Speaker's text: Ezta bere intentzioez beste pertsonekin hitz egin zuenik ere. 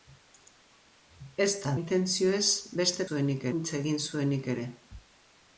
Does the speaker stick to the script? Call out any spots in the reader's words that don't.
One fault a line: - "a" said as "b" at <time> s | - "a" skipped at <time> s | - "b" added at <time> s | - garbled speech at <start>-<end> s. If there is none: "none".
- "bere" skipped at 1.7 s
- "pertsonekin" said as "zuenik" at 3.1 s